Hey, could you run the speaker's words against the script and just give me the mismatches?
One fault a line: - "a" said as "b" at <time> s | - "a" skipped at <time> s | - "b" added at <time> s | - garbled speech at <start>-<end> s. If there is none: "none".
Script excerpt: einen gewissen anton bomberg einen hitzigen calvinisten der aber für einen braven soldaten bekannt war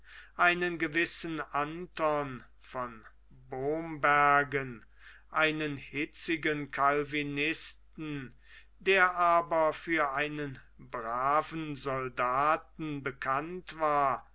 - "von" added at 2.6 s